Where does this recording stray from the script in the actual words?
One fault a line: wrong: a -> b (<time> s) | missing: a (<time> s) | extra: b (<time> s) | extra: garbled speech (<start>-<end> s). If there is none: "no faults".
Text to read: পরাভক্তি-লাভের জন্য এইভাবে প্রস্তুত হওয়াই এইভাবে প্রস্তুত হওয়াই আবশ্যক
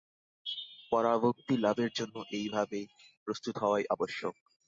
missing: এইভাবে প্রস্তুত হওয়াই (3.8 s)